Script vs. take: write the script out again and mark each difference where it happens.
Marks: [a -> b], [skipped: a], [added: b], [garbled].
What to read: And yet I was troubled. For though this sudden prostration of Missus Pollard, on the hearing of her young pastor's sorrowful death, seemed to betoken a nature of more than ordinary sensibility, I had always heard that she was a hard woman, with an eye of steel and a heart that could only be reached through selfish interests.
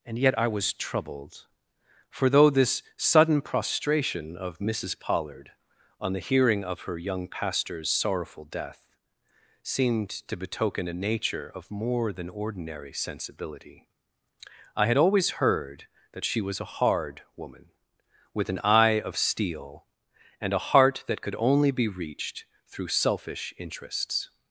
And yet I was troubled. For though this sudden prostration of Missus Pollard, on the hearing of her young pastor's sorrowful death, seemed to betoken a nature of more than ordinary sensibility, I had always heard that she was a hard woman, with an eye of steel and a heart that could only be reached through selfish interests.